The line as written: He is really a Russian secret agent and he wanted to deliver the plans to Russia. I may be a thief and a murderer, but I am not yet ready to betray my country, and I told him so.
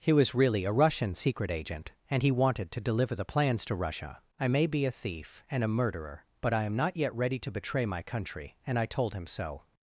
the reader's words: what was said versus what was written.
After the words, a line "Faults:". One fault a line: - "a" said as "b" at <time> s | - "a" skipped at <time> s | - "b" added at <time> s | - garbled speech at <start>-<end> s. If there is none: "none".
He was really a Russian secret agent and he wanted to deliver the plans to Russia. I may be a thief and a murderer, but I am not yet ready to betray my country, and I told him so.
Faults:
- "is" said as "was" at 0.1 s